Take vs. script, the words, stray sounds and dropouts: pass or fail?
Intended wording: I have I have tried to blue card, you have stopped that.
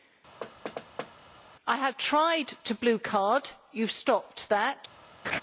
fail